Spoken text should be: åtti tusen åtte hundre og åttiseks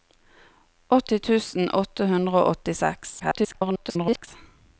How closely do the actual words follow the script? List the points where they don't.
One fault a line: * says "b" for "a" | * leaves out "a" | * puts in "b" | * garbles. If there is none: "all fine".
* garbles